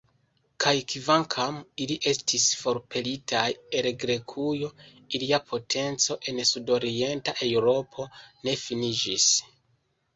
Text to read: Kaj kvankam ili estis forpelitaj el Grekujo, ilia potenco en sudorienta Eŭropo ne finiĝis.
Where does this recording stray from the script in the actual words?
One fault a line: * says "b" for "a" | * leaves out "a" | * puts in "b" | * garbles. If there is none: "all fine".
all fine